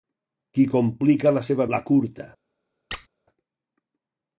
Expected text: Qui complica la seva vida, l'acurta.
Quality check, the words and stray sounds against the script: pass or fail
fail